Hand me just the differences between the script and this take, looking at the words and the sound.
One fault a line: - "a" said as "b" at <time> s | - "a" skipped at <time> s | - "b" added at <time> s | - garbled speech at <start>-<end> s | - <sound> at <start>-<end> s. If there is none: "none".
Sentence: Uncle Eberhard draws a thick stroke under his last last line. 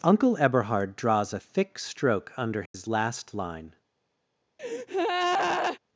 - dropout at 2.7-2.7 s
- "last" skipped at 3.3 s
- breath at 4.6-5.8 s